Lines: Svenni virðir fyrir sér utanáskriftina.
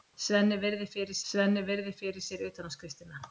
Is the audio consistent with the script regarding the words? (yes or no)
no